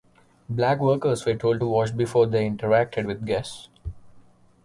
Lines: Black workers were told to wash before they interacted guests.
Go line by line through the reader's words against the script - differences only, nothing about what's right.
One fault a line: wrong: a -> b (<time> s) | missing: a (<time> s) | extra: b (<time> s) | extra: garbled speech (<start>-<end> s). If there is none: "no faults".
extra: with (3.1 s)